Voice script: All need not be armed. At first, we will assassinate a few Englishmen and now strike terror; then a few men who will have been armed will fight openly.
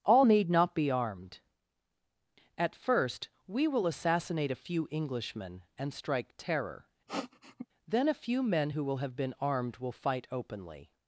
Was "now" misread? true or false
true